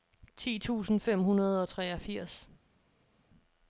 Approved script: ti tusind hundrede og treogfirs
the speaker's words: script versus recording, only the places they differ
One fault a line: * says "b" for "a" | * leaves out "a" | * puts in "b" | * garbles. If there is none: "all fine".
* puts in "fem"